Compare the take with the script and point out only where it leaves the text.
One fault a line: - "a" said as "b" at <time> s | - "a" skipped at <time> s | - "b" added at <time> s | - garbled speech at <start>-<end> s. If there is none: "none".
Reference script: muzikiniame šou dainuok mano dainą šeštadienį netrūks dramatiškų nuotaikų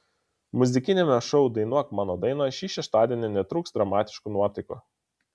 - "šį" added at 2.6 s